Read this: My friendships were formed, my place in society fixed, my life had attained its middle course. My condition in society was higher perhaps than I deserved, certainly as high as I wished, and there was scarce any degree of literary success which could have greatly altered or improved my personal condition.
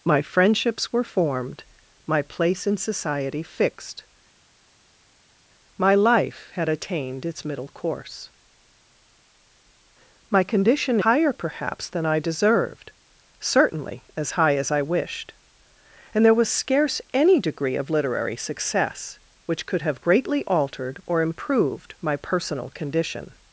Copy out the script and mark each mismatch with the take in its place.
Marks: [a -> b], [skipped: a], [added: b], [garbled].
My friendships were formed, my place in society fixed, my life had attained its middle course. My condition [skipped: in society was] higher perhaps than I deserved, certainly as high as I wished, and there was scarce any degree of literary success which could have greatly altered or improved my personal condition.